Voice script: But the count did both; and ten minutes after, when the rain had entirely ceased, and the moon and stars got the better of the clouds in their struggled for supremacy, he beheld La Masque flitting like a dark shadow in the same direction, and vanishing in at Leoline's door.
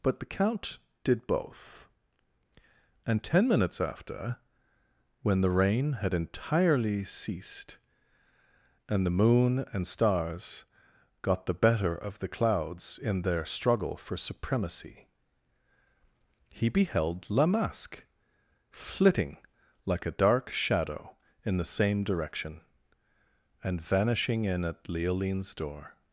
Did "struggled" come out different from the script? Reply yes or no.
yes